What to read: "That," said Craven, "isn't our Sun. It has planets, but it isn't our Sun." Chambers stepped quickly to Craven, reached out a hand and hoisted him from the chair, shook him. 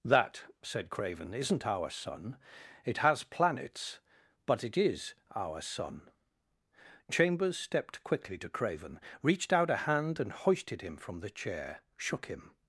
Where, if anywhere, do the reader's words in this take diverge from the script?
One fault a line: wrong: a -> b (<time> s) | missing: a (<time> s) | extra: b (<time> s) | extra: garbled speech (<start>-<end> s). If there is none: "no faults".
wrong: isn't -> is (4.8 s)